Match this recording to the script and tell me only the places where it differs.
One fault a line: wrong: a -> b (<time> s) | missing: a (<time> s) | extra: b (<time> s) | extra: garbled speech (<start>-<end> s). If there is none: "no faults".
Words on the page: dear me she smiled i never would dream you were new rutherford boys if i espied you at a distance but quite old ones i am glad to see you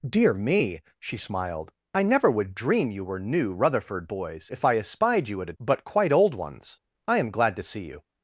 missing: distance (5.5 s)